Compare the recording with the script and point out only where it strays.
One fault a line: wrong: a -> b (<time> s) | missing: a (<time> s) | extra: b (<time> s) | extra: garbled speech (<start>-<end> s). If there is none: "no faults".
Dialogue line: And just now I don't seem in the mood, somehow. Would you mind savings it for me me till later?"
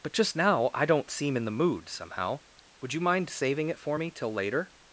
wrong: And -> But (0.0 s)
wrong: savings -> saving (3.3 s)
missing: me (4.1 s)